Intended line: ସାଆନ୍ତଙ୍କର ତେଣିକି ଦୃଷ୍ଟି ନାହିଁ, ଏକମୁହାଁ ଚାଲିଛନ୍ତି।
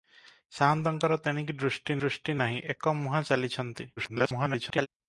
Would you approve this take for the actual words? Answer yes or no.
no